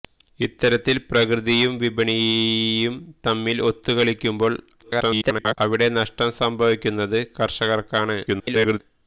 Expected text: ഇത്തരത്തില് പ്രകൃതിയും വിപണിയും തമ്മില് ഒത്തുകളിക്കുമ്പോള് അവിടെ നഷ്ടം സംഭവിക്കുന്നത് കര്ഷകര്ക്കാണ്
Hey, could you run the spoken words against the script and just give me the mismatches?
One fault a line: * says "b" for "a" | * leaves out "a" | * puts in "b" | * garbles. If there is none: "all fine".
* garbles
* garbles